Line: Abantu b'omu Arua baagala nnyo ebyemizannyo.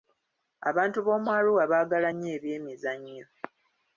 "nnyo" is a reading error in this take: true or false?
false